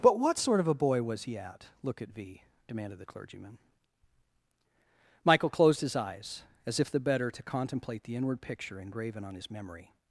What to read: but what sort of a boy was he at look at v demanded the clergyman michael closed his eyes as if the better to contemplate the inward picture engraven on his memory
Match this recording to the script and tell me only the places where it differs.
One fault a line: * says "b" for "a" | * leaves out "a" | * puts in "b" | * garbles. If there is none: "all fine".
all fine